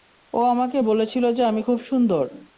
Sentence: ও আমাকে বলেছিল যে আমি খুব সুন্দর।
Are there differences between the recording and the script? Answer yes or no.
no